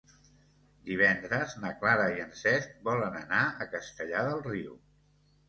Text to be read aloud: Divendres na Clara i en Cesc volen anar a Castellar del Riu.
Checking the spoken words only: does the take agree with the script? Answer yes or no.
yes